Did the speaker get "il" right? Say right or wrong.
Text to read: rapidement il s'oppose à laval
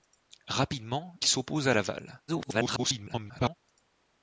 wrong